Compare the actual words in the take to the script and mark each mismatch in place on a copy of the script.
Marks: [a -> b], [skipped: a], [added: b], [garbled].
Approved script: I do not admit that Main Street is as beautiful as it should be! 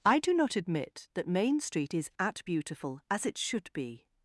I do not admit that Main Street is [as -> at] beautiful as it should be!